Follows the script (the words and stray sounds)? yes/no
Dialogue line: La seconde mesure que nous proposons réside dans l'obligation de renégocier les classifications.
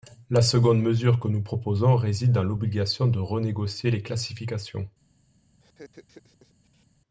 no